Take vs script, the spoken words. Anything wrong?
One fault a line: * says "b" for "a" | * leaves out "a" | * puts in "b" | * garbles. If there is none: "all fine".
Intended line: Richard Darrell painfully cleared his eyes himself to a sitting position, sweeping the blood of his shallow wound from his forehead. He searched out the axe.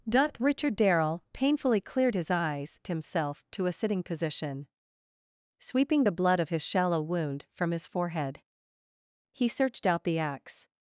all fine